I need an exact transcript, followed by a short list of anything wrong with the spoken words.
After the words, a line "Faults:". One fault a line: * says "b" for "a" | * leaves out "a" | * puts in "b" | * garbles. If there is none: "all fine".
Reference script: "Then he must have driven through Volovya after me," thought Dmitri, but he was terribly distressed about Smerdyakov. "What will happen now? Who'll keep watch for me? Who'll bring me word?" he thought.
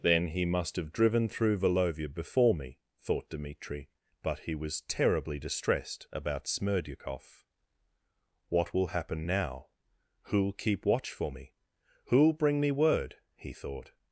"Then he must have driven through Volovya before me," thought Dmitri, but he was terribly distressed about Smerdyakov. "What will happen now? Who'll keep watch for me? Who'll bring me word?" he thought.
Faults:
* says "before" for "after"